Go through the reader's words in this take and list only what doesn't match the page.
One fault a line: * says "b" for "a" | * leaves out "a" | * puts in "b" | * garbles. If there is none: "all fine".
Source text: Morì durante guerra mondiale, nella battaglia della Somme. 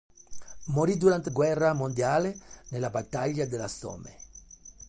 all fine